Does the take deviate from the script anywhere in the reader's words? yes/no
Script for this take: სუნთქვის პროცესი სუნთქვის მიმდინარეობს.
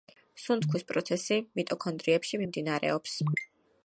yes